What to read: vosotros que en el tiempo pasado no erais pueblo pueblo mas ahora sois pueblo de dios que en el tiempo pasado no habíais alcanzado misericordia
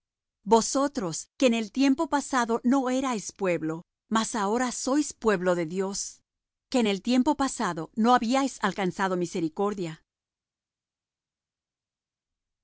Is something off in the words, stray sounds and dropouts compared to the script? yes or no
yes